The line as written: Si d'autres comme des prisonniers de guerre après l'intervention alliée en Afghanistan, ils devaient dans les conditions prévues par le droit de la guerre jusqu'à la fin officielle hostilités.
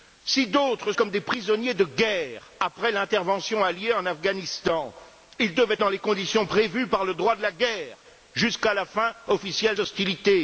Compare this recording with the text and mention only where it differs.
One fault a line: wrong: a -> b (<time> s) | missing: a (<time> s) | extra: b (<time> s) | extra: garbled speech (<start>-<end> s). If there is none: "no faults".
no faults